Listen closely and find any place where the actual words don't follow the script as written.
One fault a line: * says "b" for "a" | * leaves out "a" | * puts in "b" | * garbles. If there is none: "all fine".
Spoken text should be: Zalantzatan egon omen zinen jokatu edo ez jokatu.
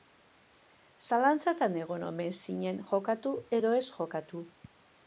all fine